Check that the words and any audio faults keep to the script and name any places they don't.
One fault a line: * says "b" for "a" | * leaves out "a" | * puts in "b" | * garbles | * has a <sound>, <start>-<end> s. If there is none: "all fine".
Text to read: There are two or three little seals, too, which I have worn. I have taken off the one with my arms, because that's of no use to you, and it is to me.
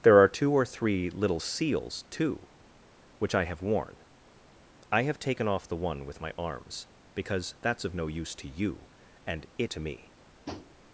* leaves out "is"
* has a tap, 10.5-10.8 s